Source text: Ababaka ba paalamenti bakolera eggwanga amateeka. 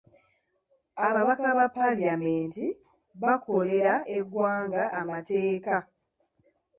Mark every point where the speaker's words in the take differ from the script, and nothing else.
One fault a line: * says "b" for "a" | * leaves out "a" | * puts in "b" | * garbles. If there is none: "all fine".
all fine